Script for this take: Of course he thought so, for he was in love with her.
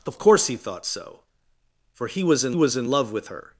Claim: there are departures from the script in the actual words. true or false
true